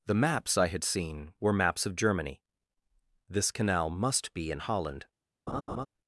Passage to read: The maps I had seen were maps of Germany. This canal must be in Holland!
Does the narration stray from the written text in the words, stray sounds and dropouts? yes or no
yes